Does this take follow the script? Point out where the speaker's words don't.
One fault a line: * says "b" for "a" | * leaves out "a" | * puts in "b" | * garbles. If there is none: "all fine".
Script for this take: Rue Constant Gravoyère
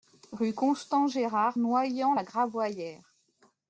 * puts in "Gérard Noyant la"